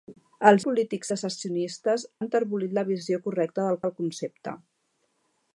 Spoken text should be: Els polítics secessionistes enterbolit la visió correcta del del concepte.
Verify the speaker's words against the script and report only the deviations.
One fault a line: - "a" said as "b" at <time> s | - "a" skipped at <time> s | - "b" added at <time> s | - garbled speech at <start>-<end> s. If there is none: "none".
none